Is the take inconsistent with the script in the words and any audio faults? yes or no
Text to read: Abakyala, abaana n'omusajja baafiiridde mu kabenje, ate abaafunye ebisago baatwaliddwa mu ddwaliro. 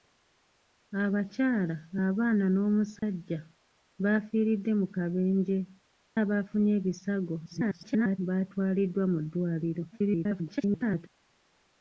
yes